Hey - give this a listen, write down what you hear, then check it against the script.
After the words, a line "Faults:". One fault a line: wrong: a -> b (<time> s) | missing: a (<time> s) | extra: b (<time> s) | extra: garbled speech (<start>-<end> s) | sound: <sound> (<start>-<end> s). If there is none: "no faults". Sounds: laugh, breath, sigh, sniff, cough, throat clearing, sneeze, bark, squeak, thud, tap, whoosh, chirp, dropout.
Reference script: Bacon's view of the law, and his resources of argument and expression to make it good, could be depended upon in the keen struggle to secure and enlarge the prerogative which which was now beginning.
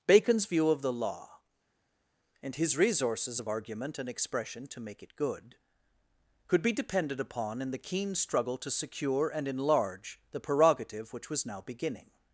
Bacon's view of the law, and his resources of argument and expression to make it good, could be depended upon in the keen struggle to secure and enlarge the prerogative which was now beginning.
Faults:
missing: which (11.3 s)